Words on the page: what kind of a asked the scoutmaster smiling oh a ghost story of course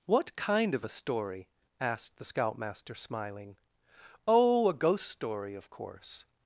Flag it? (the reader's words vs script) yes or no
yes